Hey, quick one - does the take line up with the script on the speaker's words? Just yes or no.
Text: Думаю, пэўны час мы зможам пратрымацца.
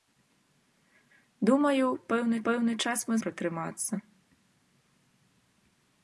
no